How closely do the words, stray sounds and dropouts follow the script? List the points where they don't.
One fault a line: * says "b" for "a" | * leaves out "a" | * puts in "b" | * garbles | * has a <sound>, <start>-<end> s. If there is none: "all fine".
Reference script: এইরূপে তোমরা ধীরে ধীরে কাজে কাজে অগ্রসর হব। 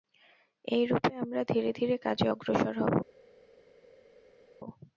* says "আমরা" for "তোমরা"
* leaves out "কাজে"